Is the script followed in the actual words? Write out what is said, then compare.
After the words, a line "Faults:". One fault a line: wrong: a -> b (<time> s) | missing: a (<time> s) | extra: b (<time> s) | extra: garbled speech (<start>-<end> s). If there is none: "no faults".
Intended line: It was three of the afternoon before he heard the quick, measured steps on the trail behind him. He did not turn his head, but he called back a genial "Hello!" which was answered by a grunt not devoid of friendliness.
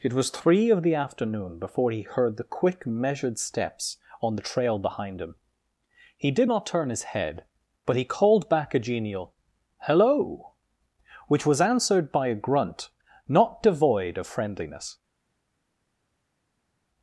It was three of the afternoon before he heard the quick, measured steps on the trail behind him. He did not turn his head, but he called back a genial "Hello!" which was answered by a grunt not devoid of friendliness.
Faults:
no faults